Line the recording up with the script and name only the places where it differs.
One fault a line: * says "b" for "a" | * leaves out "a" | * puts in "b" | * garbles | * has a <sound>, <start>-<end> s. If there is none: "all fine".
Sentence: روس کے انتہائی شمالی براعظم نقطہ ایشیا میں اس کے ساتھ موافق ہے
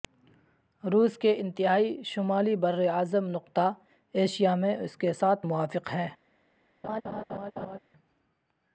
* has a laugh, 6.8-7.8 s